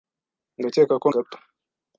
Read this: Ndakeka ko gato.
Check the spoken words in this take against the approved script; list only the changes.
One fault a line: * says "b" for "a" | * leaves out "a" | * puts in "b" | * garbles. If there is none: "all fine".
all fine